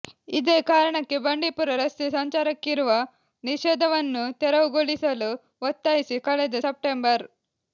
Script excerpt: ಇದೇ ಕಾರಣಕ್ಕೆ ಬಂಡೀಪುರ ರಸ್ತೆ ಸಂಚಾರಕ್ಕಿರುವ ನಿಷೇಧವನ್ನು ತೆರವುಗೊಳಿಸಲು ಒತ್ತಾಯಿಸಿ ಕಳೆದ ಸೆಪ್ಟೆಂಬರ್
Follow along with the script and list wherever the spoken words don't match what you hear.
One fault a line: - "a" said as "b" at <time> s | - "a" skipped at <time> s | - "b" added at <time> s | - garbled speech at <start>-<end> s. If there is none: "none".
none